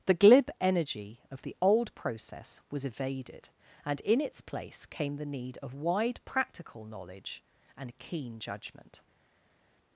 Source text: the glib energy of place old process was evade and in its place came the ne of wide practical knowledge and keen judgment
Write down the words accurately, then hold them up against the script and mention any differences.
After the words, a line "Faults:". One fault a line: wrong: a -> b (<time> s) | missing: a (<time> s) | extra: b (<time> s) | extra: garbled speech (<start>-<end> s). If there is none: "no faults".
the glib energy of the old process was evaded and in its place came the need of wide practical knowledge and keen judgment
Faults:
wrong: place -> the (1.4 s)
wrong: evade -> evaded (2.9 s)
wrong: ne -> need (5.2 s)